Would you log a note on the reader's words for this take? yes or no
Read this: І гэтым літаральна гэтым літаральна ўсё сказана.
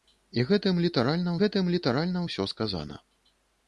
no